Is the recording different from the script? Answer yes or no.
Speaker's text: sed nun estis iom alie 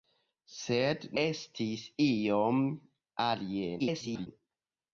yes